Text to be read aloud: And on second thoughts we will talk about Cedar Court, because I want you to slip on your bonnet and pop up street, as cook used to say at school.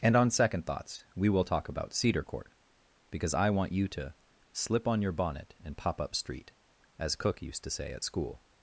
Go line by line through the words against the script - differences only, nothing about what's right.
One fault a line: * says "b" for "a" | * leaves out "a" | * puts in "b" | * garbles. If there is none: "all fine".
all fine